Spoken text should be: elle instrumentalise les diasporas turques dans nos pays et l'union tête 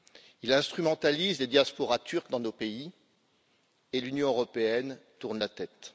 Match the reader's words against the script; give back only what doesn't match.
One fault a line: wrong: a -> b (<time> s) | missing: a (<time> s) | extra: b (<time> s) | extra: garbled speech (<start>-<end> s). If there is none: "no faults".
wrong: elle -> il (0.4 s)
extra: européenne tourne la (4.3 s)